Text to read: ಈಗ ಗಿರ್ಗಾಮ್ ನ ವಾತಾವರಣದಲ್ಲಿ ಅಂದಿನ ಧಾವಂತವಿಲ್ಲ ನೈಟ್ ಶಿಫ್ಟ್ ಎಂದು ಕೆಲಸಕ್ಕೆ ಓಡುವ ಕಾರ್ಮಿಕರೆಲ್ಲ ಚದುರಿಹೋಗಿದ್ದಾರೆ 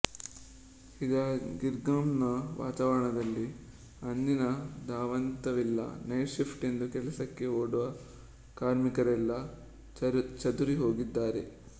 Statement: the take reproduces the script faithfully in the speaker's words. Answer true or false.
true